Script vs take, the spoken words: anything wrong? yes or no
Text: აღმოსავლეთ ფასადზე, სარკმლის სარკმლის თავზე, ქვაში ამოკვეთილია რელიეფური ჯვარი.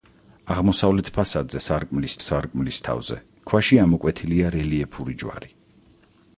no